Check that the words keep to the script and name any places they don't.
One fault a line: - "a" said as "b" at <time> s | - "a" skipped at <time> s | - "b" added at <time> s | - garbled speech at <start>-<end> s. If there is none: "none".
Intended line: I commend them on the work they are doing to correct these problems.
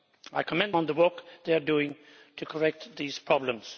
- "them" skipped at 0.8 s